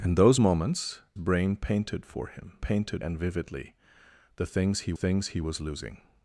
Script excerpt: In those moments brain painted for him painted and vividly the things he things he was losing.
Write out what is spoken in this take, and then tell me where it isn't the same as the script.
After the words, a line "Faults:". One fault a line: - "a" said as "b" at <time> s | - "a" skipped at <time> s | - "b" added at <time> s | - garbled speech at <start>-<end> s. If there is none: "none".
In those moments brain painted for him painted and vividly the things he things he was losing.
Faults:
none